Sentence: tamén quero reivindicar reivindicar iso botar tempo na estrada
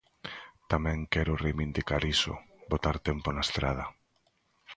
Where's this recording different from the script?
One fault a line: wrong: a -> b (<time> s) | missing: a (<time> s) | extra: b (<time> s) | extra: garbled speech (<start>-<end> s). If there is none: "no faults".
missing: reivindicar (2.0 s)